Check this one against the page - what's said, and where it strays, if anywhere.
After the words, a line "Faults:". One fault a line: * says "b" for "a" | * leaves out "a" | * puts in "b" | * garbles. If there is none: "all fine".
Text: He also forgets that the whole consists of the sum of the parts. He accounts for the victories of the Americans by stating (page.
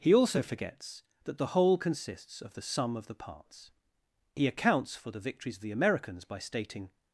He also forgets that the whole consists of the sum of the parts. He accounts for the victories of the Americans by stating.
Faults:
* leaves out "page"